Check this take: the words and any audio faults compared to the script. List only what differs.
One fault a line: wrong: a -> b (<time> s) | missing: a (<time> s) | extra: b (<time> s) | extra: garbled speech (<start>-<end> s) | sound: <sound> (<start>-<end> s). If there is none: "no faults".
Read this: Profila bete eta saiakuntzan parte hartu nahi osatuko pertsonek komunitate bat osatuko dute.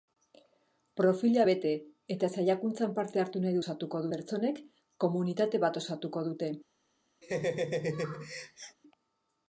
sound: laugh (7.2-8.8 s)